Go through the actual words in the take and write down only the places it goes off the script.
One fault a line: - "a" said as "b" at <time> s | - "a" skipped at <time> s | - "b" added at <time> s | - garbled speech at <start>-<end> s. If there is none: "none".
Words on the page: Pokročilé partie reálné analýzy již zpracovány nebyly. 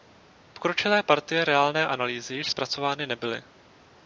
none